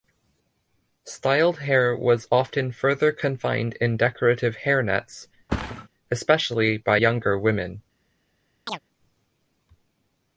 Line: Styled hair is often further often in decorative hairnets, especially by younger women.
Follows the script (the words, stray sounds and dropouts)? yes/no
no